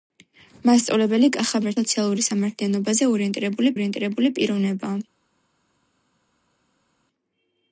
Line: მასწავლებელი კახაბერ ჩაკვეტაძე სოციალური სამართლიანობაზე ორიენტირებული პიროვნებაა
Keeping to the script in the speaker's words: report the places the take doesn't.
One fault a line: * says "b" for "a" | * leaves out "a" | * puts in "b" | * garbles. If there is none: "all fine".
* leaves out "ჩაკვეტაძე"
* puts in "ორიენტირებული"